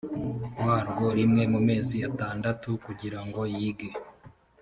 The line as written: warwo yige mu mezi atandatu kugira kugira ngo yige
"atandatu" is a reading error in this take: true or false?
false